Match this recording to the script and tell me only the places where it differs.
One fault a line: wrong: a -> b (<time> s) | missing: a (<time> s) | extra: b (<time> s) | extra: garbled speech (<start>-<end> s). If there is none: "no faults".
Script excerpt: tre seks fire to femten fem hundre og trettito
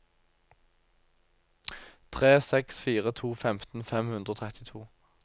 no faults